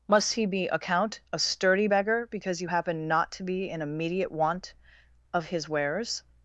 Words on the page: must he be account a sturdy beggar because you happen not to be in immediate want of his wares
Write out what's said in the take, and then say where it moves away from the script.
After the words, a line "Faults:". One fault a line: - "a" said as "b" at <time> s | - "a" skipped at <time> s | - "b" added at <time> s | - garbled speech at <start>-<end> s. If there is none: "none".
must he be account a sturdy beggar because you happen not to be in immediate want of his wares
Faults:
none